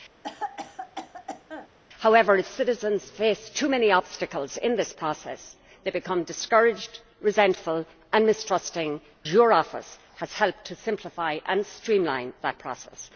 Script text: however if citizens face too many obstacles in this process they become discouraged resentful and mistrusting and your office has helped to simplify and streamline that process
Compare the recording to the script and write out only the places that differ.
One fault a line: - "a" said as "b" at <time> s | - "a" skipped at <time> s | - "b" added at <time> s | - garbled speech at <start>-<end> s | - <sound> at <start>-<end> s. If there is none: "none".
- cough at 0.2-1.7 s
- "and" skipped at 9.0 s